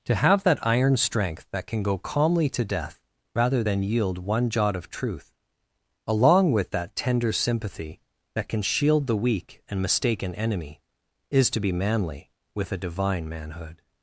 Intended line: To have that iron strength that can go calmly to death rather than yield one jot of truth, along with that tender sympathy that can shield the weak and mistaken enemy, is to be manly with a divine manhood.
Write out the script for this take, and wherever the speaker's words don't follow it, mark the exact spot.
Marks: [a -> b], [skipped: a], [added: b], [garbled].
To have that iron strength that can go calmly to death rather than yield one jot of truth, along with that tender sympathy that can shield the weak and mistaken enemy, is to be manly with a divine manhood.